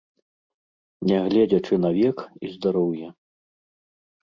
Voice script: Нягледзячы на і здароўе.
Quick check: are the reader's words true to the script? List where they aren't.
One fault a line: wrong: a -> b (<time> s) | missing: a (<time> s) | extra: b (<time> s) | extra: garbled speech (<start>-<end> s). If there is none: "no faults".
extra: век (2.0 s)